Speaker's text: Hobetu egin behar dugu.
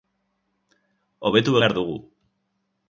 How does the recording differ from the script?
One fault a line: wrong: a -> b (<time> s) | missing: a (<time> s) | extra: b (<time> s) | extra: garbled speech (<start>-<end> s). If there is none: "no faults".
missing: egin (1.6 s)